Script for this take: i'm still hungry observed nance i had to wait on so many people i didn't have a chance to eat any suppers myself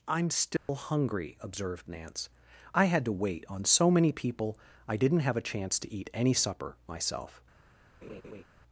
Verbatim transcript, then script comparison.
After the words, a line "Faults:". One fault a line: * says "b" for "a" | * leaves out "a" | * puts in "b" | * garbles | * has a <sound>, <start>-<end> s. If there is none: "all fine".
i'm still hungry observed nance i had to wait on so many people i didn't have a chance to eat any supper myself
Faults:
* has a dropout, 0.6-0.7 s
* says "supper" for "suppers"
* has a laugh, 8.0-8.4 s